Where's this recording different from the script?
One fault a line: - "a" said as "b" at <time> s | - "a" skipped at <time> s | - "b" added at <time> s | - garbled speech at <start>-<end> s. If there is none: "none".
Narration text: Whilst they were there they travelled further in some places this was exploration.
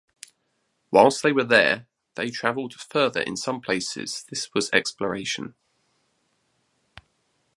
none